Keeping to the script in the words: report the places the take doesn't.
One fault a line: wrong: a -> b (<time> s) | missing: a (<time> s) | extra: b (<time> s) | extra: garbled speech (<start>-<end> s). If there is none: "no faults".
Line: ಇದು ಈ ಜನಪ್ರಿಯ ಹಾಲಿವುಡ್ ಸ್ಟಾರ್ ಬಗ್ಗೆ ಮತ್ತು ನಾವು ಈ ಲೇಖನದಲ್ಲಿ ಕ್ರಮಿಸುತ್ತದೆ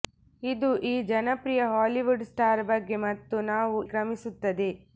missing: ಈ ಲೇಖನದಲ್ಲಿ (3.8 s)